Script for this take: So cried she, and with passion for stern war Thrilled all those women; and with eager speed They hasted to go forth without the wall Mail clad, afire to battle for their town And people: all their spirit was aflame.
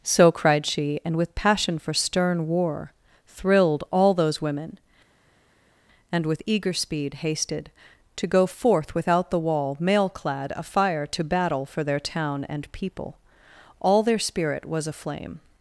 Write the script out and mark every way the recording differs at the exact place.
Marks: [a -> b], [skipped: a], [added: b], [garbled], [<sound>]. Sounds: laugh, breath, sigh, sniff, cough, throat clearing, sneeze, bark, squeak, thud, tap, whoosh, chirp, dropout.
So cried she, and with passion for stern war Thrilled all those women; and with eager speed [skipped: They] hasted to go forth without the wall Mail clad, afire to battle for their town And people: all their spirit was aflame.